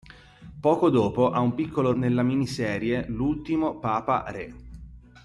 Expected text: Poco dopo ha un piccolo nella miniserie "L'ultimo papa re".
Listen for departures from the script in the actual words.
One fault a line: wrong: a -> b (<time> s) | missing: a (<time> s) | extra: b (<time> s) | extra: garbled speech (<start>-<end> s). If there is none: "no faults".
no faults